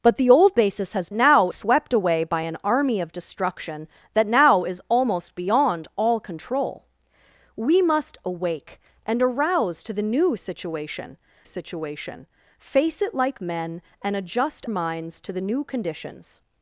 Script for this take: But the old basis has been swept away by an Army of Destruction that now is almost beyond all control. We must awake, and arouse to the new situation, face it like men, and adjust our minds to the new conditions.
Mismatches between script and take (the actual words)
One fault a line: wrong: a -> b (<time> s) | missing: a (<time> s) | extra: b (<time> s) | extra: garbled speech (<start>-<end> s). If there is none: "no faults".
wrong: been -> now (1.1 s)
extra: situation (11.4 s)
missing: our (14.7 s)